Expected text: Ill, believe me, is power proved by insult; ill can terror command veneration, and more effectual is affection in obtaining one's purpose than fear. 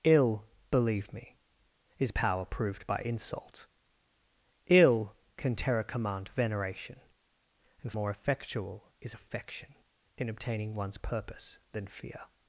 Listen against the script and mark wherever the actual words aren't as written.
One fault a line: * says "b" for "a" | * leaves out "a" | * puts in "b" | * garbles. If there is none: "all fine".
all fine